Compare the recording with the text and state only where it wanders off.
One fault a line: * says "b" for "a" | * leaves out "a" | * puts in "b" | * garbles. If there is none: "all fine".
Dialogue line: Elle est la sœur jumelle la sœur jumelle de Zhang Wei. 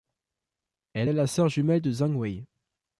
* leaves out "la sœur jumelle"